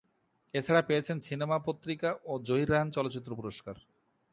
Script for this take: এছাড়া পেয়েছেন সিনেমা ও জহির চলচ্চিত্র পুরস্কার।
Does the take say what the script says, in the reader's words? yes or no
no